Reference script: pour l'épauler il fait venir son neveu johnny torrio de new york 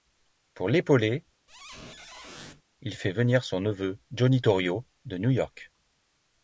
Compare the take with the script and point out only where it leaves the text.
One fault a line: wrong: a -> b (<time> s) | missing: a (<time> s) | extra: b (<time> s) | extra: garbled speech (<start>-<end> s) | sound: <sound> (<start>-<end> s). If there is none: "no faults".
sound: squeak (1.5-2.6 s)